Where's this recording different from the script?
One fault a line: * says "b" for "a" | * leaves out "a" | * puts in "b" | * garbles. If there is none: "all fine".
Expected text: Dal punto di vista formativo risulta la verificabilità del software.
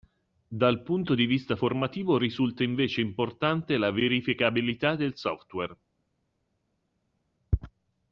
* puts in "invece importante"